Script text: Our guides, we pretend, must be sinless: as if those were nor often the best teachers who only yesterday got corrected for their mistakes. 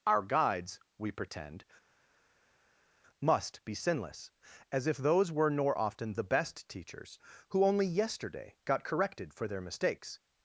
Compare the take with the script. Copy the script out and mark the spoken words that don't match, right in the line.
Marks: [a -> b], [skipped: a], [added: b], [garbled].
Our guides, we pretend, must be sinless: as if those were nor often the best teachers who only yesterday got corrected for their mistakes.